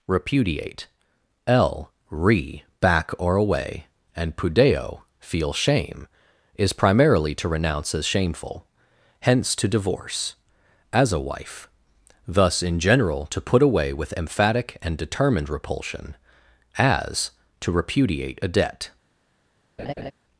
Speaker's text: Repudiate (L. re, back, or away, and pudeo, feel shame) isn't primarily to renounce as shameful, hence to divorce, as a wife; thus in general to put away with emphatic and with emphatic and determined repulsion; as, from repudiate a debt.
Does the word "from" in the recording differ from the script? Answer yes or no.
yes